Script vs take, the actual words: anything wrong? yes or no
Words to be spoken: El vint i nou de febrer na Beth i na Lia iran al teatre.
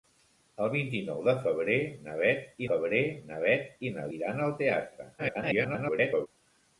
yes